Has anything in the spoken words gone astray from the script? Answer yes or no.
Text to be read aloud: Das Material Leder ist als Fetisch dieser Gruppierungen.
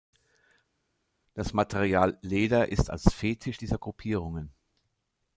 no